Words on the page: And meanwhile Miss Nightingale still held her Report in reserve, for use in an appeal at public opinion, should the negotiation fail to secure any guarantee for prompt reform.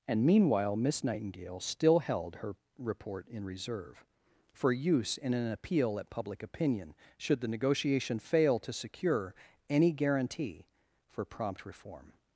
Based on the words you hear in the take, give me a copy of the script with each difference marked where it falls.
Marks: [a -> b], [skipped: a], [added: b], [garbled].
And meanwhile Miss Nightingale still held her Report in reserve, for use in an appeal at public opinion, should the negotiation fail to secure any guarantee for prompt reform.